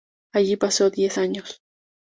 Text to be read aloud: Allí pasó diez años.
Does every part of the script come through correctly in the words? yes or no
yes